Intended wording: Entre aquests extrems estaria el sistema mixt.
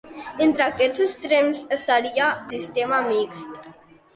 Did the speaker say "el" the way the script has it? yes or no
no